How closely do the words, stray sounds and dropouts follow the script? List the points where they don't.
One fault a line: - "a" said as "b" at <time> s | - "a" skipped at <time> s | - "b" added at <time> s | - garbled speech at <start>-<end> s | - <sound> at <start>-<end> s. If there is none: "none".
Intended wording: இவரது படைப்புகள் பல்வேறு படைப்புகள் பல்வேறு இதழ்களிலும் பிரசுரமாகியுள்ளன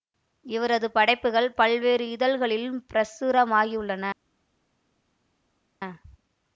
- "படைப்புகள் பல்வேறு" skipped at 2.1 s